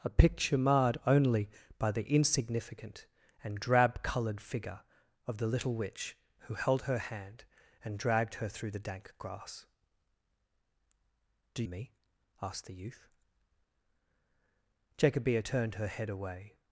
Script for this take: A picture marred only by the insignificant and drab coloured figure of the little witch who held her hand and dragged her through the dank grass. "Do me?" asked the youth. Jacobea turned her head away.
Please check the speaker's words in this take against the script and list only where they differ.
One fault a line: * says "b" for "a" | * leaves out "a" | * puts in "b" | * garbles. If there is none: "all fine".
all fine